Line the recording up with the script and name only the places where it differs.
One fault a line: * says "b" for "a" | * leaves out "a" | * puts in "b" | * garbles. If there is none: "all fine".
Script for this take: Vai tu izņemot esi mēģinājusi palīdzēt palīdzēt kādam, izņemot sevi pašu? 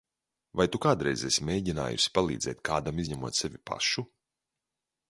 * says "kādreiz" for "izņemot"
* leaves out "palīdzēt"